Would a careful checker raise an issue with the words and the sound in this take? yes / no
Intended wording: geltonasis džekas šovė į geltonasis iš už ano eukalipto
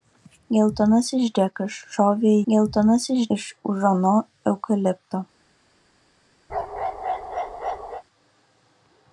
yes